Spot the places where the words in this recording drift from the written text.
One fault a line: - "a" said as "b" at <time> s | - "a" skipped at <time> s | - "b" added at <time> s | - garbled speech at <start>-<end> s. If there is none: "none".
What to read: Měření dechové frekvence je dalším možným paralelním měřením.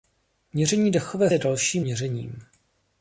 - "frekvence" skipped at 1.3 s
- "možným paralelním" skipped at 1.8 s